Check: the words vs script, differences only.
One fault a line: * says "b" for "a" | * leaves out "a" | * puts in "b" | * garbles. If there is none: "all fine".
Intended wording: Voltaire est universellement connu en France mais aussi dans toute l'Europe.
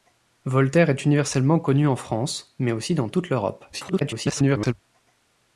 * garbles